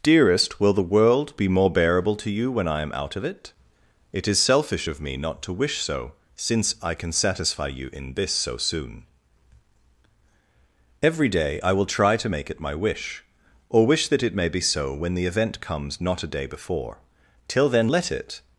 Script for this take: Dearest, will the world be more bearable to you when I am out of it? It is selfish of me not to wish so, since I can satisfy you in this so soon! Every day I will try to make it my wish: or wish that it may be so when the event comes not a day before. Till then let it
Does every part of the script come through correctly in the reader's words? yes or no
yes